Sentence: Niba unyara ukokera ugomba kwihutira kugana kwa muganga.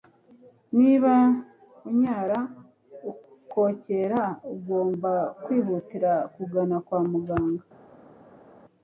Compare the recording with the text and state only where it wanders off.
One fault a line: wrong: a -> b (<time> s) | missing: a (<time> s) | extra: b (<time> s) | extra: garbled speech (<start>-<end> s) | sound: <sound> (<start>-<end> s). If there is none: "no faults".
no faults